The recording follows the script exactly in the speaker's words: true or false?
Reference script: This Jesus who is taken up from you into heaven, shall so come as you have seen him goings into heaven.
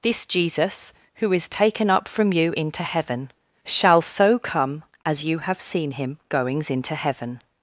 true